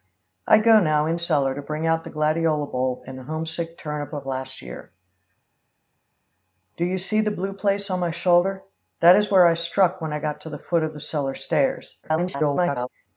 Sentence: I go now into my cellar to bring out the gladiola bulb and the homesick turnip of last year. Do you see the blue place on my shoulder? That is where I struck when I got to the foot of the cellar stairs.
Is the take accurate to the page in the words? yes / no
no